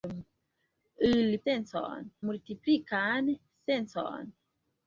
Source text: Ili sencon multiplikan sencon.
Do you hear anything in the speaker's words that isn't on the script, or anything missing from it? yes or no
no